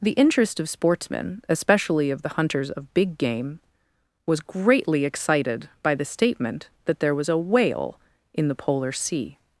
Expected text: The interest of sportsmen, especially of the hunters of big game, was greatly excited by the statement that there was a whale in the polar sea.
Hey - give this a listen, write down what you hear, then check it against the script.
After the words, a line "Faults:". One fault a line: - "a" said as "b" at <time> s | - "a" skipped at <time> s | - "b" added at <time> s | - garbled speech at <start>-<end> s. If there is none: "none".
The interest of sportsmen, especially of the hunters of big game, was greatly excited by the statement that there was a whale in the polar sea.
Faults:
none